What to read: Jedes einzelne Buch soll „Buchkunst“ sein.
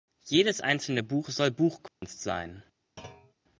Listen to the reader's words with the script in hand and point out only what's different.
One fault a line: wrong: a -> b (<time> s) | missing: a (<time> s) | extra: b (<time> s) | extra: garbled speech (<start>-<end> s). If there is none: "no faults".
no faults